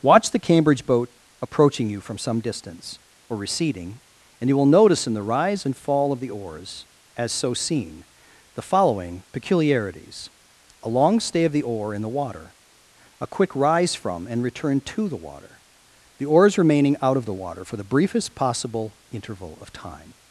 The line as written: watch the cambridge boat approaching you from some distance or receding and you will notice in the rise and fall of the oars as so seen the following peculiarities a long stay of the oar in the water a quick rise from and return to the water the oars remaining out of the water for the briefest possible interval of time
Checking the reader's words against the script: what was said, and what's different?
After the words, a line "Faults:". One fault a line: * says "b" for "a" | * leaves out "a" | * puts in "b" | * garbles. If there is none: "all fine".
watch the cambridge boat approaching you from some distance or receding and you will notice in the rise and fall of the oars as so seen the following peculiarities a long stay of the oar in the water a quick rise from and return to the water the oars remaining out of the water for the briefest possible interval of time
Faults:
all fine